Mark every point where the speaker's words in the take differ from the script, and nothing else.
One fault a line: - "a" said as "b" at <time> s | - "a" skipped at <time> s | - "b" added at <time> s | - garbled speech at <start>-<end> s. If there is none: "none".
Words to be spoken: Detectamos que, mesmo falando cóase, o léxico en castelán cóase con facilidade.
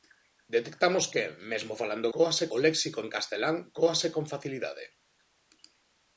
none